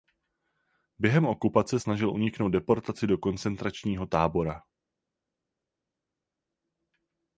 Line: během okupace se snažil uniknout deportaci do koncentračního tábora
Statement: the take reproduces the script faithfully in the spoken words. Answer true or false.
false